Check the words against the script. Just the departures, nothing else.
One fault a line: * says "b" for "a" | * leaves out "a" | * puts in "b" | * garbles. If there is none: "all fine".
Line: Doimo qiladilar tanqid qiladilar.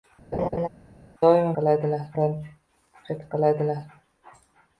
all fine